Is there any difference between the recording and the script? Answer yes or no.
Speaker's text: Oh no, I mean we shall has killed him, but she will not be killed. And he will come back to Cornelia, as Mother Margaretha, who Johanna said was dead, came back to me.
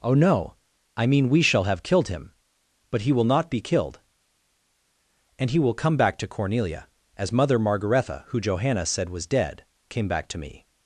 yes